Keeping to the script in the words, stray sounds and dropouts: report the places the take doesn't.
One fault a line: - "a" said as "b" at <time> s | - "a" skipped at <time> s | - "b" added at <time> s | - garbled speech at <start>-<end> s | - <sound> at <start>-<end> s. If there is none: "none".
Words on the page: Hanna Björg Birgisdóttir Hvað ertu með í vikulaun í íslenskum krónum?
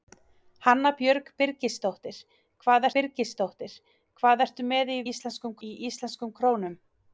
- "Birgisdóttir Hvað" added at 3.0 s
- "vikulaun" said as "íslenskum" at 5.1 s